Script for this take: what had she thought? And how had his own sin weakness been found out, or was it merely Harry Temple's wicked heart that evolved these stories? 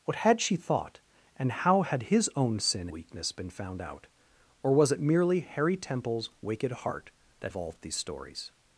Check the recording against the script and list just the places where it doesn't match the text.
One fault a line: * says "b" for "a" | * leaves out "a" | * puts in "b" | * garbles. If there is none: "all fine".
all fine